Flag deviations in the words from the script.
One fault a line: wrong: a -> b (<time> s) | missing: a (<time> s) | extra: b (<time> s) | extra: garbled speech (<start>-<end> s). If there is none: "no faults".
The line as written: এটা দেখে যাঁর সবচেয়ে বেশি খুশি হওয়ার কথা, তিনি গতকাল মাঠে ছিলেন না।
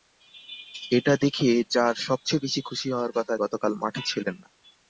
missing: তিনি (3.3 s)